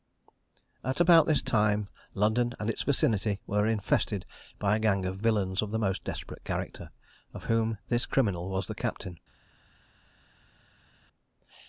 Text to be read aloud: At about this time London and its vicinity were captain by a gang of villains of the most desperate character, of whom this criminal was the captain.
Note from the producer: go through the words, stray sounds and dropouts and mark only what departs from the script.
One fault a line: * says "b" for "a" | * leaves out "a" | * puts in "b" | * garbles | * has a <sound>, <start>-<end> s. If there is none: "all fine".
* says "infested" for "captain"